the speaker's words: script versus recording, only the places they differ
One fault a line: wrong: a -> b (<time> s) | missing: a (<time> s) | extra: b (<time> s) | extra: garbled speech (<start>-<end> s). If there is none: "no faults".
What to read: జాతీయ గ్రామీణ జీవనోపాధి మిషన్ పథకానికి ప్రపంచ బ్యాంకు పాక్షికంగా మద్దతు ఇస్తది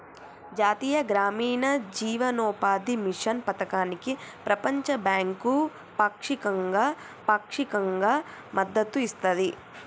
extra: పాక్షికంగా (7.3 s)